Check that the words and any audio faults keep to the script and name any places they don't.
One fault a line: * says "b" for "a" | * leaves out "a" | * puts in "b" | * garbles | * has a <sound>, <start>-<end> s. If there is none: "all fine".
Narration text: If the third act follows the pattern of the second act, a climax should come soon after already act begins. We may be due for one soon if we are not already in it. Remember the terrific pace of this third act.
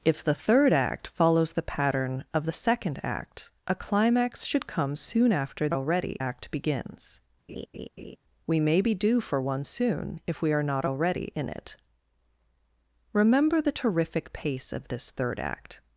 * has a laugh, 7.5-8.2 s